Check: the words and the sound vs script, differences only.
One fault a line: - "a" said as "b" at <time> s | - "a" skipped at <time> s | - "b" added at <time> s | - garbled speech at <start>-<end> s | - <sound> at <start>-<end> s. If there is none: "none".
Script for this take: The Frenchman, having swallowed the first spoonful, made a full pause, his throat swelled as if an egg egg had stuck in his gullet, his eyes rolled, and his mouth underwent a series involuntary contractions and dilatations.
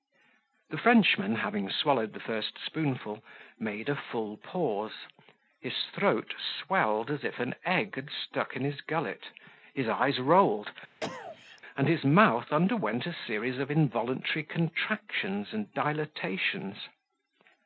- "egg" skipped at 8.0 s
- cough at 11.0-11.6 s
- "of" added at 13.6 s